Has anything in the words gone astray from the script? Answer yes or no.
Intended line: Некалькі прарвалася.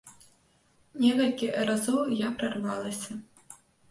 yes